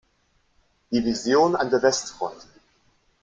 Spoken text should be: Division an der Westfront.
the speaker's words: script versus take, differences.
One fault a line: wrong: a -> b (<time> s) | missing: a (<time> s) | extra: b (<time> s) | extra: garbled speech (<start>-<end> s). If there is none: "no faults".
no faults